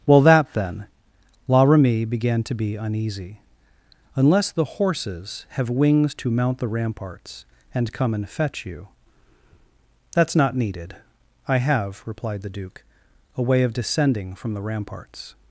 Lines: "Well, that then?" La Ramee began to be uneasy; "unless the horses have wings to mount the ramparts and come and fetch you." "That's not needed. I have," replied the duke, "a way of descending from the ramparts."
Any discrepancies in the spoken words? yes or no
no